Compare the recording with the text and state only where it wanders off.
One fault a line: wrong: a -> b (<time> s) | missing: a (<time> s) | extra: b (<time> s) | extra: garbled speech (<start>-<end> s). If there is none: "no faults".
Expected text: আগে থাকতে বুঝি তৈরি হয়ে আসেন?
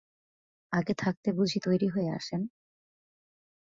no faults